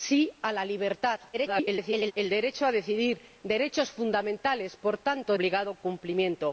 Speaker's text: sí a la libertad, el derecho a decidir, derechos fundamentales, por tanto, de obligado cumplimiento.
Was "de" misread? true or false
true